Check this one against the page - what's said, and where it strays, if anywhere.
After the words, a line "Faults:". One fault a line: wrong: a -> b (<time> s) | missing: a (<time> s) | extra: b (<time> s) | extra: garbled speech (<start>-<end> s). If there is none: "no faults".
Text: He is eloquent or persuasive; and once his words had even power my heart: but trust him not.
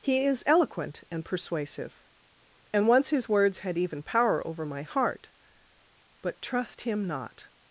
He is eloquent and persuasive; and once his words had even power over my heart: but trust him not.
Faults:
wrong: or -> and (1.1 s)
extra: over (4.5 s)